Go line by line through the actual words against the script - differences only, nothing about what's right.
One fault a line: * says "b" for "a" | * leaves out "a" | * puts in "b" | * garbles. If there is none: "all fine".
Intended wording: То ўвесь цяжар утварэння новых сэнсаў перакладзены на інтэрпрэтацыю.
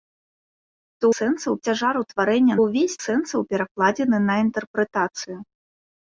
* says "сэнсаў" for "ўвесь"
* says "ўвесь" for "новых"